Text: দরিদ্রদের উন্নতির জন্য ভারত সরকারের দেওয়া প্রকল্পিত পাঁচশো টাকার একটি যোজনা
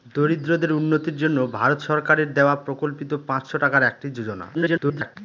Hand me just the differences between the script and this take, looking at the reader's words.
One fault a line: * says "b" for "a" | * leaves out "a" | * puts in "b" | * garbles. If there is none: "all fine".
* garbles